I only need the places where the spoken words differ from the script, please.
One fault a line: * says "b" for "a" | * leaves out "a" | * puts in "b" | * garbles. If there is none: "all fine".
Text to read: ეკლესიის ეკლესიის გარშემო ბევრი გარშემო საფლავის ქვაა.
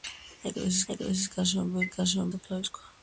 all fine